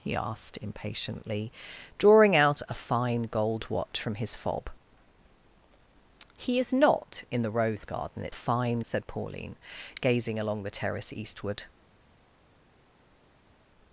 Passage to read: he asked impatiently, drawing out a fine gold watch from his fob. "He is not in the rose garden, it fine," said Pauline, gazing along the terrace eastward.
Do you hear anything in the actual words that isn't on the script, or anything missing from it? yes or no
no